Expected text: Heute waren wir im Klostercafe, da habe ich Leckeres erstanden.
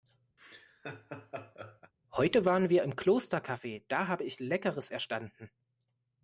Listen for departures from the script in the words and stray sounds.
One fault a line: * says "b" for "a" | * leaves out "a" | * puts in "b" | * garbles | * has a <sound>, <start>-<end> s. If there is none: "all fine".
* has a laugh, 0.4-1.9 s